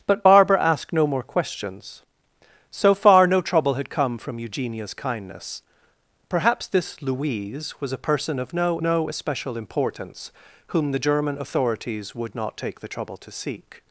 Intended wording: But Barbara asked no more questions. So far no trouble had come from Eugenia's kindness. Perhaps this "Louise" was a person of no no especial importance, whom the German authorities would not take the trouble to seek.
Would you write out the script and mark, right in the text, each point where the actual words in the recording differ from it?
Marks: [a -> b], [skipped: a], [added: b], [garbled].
But Barbara asked no more questions. So far no trouble had come from Eugenia's kindness. Perhaps this "Louise" was a person of no no especial importance, whom the German authorities would not take the trouble to seek.